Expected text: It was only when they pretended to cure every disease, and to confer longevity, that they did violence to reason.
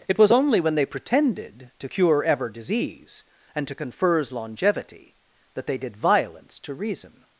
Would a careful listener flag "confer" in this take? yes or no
yes